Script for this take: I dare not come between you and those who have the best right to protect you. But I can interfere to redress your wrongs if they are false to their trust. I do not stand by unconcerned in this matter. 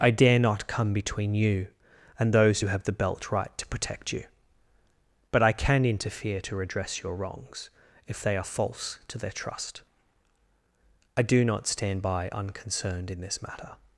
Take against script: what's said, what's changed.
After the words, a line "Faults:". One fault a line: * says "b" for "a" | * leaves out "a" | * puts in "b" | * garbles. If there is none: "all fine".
I dare not come between you and those who have the belt right to protect you. But I can interfere to redress your wrongs if they are false to their trust. I do not stand by unconcerned in this matter.
Faults:
* says "belt" for "best"